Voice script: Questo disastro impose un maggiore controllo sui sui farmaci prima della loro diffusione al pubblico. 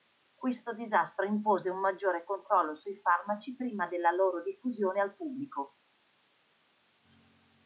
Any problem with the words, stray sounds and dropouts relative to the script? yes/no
yes